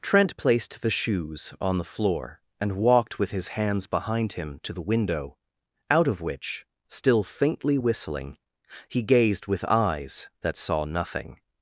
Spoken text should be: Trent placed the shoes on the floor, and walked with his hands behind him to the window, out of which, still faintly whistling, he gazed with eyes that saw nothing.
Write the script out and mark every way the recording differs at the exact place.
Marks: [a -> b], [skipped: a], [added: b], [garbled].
Trent placed the shoes on the floor, and walked with his hands behind him to the window, out of which, still faintly whistling, he gazed with eyes that saw nothing.